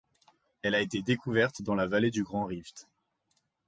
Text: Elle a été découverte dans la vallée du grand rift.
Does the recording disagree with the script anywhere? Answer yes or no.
no